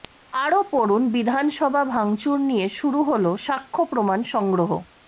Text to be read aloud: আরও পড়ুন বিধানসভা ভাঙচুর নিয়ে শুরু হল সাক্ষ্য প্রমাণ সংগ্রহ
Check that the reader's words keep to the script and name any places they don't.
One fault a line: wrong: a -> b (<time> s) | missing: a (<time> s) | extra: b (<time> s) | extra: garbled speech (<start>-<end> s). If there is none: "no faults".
no faults